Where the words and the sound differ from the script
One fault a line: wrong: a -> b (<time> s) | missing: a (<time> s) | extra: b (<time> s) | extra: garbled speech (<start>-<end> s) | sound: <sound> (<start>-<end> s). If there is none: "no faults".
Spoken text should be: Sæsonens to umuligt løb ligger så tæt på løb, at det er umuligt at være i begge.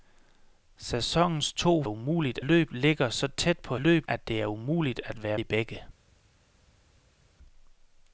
no faults